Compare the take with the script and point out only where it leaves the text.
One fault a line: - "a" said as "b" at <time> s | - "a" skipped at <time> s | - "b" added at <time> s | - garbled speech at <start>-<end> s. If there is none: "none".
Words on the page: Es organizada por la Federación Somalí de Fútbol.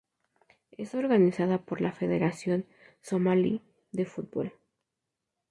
none